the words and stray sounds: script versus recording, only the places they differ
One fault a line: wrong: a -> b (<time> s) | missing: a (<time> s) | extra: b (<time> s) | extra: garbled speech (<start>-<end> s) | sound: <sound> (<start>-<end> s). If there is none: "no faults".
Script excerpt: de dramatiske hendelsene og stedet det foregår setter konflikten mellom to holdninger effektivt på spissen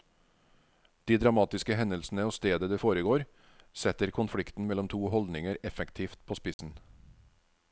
sound: dropout (6.5-6.6 s)